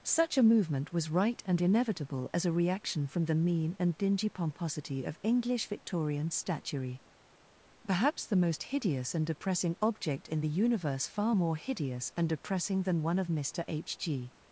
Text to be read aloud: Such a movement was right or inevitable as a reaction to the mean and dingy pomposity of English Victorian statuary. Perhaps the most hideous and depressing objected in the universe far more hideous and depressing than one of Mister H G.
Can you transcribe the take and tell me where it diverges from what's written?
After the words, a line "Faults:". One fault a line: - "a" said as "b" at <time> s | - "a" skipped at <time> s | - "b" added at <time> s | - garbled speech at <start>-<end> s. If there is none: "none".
Such a movement was right and inevitable as a reaction from the mean and dingy pomposity of English Victorian statuary. Perhaps the most hideous and depressing object in the universe far more hideous and depressing than one of Mister H G.
Faults:
- "or" said as "and" at 1.4 s
- "to" said as "from" at 3.0 s
- "objected" said as "object" at 9.8 s